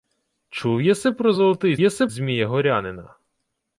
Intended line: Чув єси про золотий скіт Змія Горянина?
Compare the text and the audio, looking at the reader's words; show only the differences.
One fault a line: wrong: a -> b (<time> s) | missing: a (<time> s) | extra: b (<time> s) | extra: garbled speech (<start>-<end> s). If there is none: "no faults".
wrong: скіт -> єси (1.8 s)